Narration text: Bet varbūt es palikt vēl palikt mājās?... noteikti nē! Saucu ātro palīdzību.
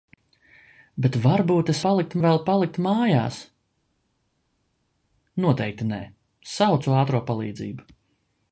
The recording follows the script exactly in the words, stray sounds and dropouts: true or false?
true